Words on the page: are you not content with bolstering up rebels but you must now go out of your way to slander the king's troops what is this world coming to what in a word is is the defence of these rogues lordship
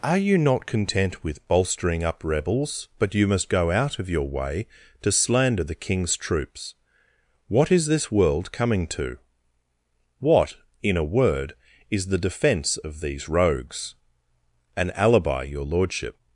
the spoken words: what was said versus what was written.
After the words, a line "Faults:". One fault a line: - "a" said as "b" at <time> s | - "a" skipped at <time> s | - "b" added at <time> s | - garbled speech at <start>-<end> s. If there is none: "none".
are you not content with bolstering up rebels but you must go out of your way to slander the king's troops what is this world coming to what in a word is the defence of these rogues an alibi your lordship
Faults:
- "now" skipped at 3.5 s
- "is" skipped at 12.1 s
- "an alibi your" added at 14.8 s